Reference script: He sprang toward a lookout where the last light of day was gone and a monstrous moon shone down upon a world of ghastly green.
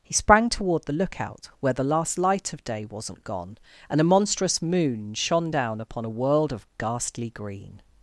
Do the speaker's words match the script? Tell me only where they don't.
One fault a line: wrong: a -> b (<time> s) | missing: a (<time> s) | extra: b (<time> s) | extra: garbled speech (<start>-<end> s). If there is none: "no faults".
wrong: a -> the (0.8 s)
wrong: was -> wasn't (2.9 s)